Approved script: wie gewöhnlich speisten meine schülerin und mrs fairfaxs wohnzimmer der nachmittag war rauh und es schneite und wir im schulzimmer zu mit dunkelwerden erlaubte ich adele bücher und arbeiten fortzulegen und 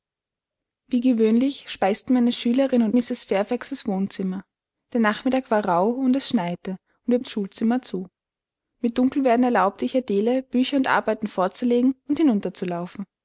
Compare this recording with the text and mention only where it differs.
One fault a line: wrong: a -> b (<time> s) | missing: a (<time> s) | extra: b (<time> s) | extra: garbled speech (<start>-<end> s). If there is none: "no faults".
no faults